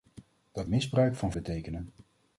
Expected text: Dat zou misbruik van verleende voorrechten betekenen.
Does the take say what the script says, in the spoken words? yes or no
no